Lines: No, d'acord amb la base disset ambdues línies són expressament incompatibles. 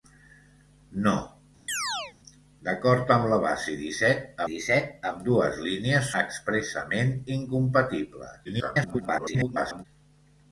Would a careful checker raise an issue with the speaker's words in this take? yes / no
yes